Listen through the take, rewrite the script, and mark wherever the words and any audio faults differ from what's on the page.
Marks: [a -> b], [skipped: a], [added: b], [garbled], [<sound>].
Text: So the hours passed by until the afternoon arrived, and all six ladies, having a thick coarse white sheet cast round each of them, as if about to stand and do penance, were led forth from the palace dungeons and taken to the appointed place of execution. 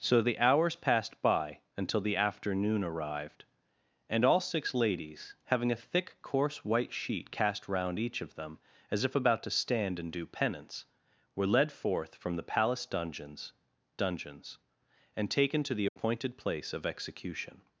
So the hours passed by until the afternoon arrived, and all six ladies, having a thick coarse white sheet cast round each of them, as if about to stand and do penance, were led forth from the palace dungeons [added: dungeons] and taken to the appointed [dropout] place of execution.